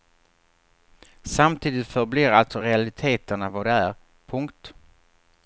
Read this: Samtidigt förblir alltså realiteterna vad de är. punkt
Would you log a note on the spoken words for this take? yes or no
no